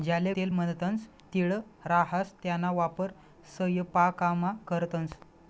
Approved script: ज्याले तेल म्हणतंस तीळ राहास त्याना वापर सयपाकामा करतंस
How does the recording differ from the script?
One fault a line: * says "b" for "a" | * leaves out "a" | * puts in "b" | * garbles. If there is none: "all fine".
all fine